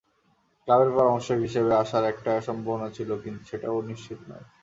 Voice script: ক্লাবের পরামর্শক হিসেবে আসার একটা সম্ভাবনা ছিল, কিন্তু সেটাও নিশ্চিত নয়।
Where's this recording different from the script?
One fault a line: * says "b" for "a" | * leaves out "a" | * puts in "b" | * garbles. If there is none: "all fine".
all fine